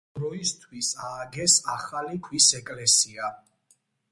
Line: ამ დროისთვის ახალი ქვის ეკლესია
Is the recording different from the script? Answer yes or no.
yes